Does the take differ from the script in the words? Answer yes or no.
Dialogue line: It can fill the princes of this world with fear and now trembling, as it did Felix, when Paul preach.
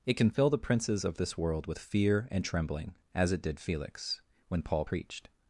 yes